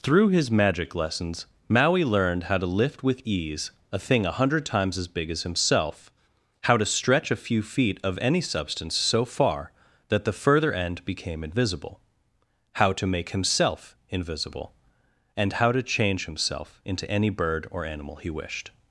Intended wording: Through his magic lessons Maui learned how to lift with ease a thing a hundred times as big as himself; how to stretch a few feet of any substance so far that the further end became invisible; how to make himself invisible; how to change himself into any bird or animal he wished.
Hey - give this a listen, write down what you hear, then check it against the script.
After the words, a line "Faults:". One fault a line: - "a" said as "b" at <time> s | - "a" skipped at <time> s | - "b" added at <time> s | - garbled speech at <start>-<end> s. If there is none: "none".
Through his magic lessons Maui learned how to lift with ease a thing a hundred times as big as himself; how to stretch a few feet of any substance so far that the further end became invisible; how to make himself invisible; and how to change himself into any bird or animal he wished.
Faults:
- "and" added at 15.4 s